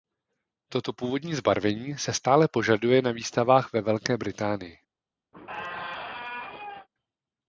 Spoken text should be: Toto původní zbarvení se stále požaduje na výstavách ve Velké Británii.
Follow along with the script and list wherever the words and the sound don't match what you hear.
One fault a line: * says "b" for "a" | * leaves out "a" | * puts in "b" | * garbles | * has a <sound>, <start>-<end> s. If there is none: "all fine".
* has a squeak, 5.3-6.9 s